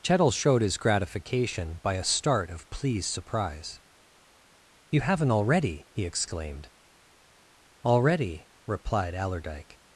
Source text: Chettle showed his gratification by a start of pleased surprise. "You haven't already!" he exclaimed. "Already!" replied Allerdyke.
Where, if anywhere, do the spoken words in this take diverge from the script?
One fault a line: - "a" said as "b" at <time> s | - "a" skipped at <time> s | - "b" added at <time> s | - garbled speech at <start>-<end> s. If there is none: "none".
none